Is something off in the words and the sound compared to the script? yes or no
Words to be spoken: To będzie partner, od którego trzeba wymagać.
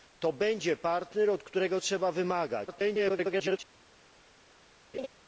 yes